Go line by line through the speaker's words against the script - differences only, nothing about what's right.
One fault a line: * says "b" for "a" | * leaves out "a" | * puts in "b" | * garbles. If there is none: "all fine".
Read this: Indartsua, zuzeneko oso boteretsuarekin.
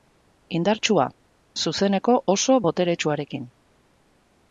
all fine